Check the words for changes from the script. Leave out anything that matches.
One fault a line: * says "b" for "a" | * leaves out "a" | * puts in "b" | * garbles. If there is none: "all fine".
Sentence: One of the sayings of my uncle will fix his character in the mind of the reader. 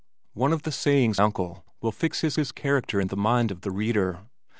* leaves out "of my"
* puts in "his"